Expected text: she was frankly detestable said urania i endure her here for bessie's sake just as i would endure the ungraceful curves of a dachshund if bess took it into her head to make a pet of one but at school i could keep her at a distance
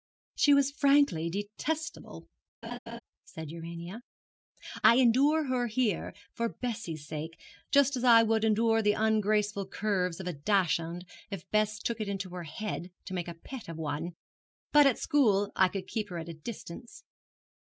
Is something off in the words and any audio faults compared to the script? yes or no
yes